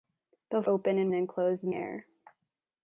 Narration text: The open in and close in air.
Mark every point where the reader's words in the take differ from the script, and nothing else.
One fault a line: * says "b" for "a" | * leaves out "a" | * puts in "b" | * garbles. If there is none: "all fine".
all fine